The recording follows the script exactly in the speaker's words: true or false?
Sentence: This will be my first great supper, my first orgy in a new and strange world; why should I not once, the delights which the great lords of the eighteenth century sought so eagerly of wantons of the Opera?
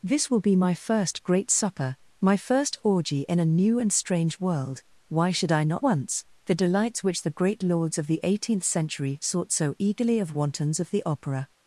true